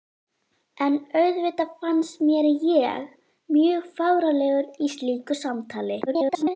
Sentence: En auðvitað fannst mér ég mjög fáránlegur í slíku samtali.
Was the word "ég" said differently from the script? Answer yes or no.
no